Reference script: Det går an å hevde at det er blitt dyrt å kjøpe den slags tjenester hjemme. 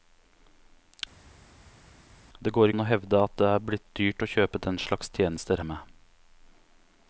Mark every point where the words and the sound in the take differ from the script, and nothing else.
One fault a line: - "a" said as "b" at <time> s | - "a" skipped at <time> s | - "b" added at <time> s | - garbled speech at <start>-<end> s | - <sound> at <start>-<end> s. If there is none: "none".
none